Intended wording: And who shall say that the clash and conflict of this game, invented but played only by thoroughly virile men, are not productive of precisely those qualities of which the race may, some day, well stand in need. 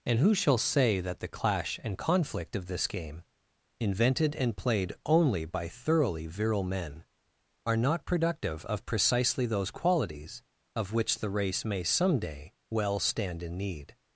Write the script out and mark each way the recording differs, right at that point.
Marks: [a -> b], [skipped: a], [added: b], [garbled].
And who shall say that the clash and conflict of this game, invented [but -> and] played only by thoroughly virile men, are not productive of precisely those qualities of which the race may, some day, well stand in need.